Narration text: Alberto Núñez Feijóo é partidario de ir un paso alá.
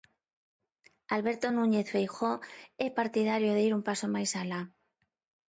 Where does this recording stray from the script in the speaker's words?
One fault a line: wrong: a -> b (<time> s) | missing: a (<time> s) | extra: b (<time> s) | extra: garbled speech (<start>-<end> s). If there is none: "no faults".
extra: máis (4.2 s)